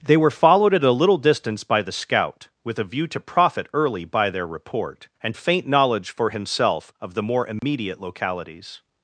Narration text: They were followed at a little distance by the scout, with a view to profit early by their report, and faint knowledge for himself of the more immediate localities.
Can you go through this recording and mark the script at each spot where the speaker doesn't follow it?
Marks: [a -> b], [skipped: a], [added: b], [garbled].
They were followed at a little distance by the scout, with a view to profit early by their report, and faint knowledge for himself of the more immediate localities.